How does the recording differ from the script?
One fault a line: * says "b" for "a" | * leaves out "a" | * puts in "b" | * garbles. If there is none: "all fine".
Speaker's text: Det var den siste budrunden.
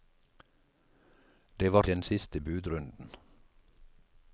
all fine